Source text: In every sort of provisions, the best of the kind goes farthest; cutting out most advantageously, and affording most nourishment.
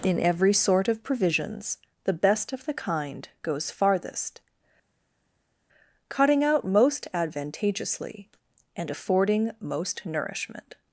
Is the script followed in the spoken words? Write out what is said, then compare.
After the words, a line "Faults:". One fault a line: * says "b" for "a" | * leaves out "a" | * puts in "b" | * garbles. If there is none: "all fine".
In every sort of provisions, the best of the kind goes farthest; cutting out most advantageously, and affording most nourishment.
Faults:
all fine